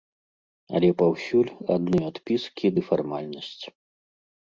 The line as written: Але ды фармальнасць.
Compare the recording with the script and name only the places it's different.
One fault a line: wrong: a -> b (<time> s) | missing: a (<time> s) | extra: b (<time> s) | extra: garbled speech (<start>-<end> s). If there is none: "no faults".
extra: паўсюль адны адпіскі (1.0 s)